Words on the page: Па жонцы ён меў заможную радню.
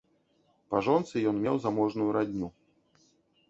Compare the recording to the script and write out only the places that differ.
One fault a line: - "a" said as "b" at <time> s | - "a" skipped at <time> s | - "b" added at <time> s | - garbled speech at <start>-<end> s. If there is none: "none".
none